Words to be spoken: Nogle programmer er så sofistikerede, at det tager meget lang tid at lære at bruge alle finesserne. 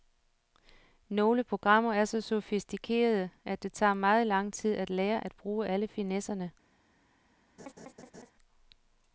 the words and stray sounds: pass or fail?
fail